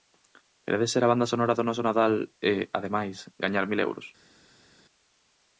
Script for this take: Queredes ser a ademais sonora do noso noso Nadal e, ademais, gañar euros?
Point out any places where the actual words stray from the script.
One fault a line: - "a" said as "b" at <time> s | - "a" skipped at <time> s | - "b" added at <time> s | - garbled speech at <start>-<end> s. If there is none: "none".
- "ademais" said as "banda" at 1.1 s
- "noso" skipped at 1.9 s
- "mil" added at 3.7 s